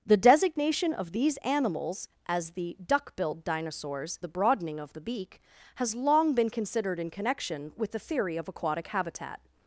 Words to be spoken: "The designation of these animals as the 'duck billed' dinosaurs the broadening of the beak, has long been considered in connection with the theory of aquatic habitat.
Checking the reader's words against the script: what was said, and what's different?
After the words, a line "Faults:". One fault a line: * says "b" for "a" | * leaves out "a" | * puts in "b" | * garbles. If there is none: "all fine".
"The designation of these animals as the 'duck billed' dinosaurs the broadening of the beak, has long been considered in connection with the theory of aquatic habitat.
Faults:
all fine